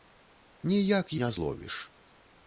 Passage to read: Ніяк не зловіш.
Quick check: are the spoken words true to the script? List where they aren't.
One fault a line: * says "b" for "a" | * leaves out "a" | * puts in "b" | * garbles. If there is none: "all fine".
all fine